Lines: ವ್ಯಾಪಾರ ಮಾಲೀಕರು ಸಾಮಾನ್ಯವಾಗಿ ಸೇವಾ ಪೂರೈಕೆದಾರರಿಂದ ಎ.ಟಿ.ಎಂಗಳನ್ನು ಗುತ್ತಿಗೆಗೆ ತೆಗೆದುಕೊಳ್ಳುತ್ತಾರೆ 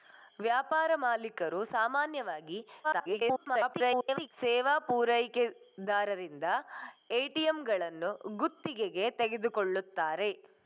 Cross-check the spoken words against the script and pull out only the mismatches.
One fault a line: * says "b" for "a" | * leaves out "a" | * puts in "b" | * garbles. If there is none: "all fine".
* garbles